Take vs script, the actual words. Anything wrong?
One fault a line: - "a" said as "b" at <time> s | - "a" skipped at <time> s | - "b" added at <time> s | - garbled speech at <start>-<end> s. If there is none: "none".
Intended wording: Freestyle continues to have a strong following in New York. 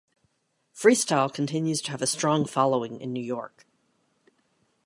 none